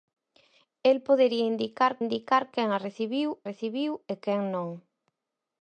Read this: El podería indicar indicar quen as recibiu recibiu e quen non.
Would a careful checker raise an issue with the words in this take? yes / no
no